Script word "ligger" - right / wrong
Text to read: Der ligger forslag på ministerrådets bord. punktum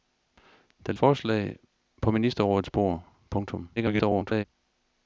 wrong